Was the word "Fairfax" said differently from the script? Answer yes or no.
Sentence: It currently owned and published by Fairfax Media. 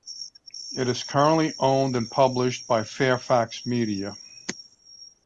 no